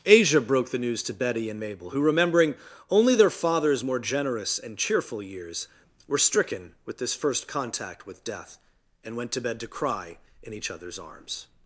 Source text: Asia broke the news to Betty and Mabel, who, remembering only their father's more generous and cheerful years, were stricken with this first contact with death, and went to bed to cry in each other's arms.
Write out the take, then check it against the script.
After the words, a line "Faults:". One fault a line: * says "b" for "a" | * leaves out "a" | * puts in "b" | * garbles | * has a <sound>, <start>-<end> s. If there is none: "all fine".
Asia broke the news to Betty and Mabel, who, remembering only their father's more generous and cheerful years, were stricken with this first contact with death, and went to bed to cry in each other's arms.
Faults:
all fine